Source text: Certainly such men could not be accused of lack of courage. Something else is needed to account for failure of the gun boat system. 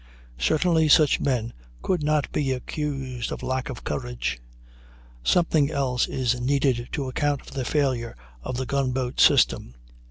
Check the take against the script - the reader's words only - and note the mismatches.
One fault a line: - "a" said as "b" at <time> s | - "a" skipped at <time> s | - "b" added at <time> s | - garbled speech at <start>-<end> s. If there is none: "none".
- "the" added at 7.5 s